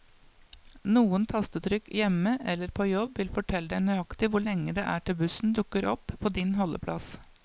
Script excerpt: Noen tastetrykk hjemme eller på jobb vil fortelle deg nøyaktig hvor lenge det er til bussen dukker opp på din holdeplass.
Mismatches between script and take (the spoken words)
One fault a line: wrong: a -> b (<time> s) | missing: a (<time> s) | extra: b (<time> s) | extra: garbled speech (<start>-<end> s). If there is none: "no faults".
no faults